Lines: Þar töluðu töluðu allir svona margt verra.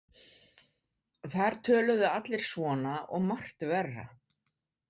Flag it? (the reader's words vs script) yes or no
yes